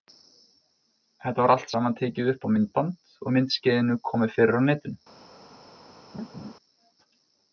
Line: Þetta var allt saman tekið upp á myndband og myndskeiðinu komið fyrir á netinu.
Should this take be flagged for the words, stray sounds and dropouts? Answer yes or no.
yes